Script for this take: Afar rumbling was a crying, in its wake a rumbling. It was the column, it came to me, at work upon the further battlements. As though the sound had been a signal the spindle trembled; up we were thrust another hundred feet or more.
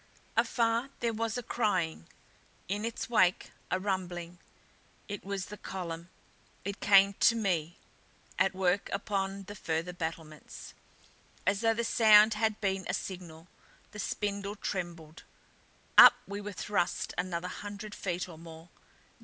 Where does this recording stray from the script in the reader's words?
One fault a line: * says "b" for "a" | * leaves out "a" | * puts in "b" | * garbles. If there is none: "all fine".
* says "there" for "rumbling"